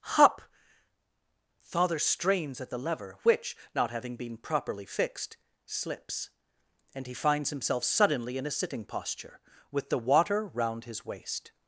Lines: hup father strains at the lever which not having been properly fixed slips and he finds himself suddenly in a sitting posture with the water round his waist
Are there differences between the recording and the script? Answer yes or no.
no